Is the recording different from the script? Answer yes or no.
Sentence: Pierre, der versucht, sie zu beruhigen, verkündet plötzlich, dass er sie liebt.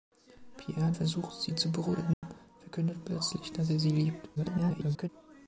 yes